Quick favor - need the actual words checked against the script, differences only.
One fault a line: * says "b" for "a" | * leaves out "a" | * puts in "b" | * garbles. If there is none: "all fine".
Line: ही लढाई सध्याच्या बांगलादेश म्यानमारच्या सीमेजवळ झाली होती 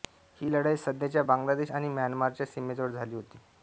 * puts in "आणि"